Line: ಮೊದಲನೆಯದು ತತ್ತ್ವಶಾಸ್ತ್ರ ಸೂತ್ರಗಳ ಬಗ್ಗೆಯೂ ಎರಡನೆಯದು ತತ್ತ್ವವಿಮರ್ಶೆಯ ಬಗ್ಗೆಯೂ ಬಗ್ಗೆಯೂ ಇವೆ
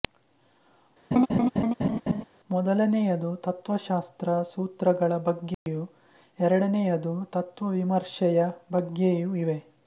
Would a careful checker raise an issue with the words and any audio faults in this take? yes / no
yes